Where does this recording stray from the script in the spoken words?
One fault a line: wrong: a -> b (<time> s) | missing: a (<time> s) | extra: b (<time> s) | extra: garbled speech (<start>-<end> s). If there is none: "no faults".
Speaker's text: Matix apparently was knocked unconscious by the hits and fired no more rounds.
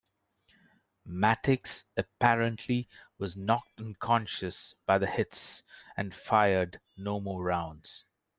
no faults